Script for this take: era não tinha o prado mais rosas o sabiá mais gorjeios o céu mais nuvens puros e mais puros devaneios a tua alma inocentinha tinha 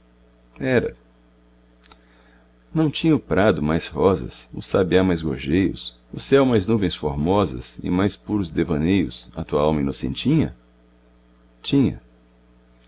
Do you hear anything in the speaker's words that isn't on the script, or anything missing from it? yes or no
yes